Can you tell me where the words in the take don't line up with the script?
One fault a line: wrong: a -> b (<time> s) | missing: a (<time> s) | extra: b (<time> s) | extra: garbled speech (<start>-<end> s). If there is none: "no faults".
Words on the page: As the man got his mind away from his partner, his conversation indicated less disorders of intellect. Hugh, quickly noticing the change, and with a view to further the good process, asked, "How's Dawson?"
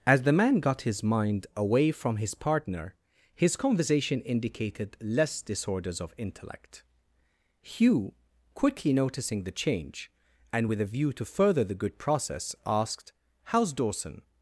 no faults